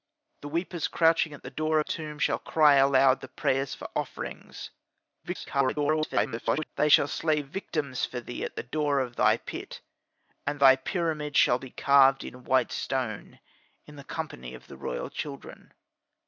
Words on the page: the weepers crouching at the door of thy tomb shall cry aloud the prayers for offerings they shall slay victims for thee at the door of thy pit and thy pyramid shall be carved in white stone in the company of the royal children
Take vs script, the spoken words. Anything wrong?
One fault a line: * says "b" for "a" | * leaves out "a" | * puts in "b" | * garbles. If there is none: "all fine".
* leaves out "of thy"
* garbles